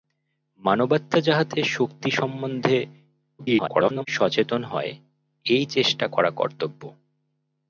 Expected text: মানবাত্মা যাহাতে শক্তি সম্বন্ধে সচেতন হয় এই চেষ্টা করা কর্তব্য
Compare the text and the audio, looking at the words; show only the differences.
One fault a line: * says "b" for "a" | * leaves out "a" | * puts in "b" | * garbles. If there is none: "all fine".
* garbles